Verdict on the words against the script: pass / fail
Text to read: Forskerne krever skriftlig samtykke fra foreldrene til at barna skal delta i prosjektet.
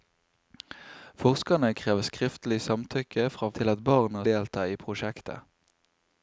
fail